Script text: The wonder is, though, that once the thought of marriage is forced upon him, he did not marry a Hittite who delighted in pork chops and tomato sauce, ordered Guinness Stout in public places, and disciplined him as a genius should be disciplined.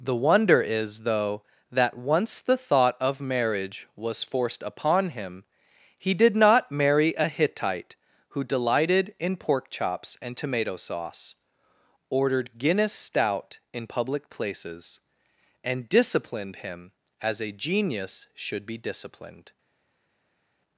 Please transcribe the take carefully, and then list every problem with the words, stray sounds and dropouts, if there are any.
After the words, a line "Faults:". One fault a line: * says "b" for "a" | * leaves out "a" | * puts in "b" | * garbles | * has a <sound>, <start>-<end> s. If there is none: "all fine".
The wonder is, though, that once the thought of marriage was forced upon him, he did not marry a Hittite who delighted in pork chops and tomato sauce, ordered Guinness Stout in public places, and disciplined him as a genius should be disciplined.
Faults:
* says "was" for "is"